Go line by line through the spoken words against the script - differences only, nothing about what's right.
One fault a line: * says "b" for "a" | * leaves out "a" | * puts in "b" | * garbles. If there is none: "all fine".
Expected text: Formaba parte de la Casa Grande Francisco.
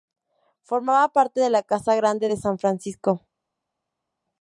* puts in "de San"